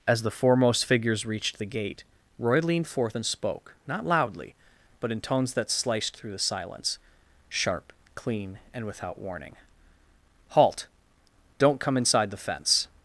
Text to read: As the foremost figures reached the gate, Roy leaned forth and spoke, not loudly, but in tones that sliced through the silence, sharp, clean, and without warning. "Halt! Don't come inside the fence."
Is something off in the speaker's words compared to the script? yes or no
no